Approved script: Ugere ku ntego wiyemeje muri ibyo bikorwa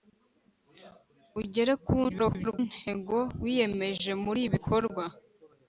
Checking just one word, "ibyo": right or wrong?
wrong